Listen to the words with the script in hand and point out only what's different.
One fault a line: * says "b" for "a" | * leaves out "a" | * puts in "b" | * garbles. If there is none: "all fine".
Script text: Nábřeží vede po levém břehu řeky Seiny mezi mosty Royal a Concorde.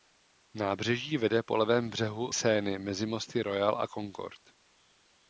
* leaves out "řeky"